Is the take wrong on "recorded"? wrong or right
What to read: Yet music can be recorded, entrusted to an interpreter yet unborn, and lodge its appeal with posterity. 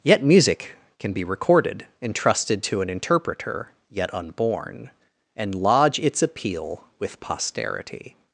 right